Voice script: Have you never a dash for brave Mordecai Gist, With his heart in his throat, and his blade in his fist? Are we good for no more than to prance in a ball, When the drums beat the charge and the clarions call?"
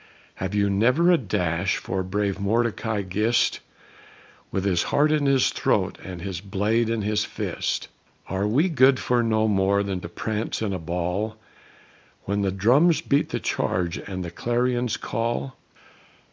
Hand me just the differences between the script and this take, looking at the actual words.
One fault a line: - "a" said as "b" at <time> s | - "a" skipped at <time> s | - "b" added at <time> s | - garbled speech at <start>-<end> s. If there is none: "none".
none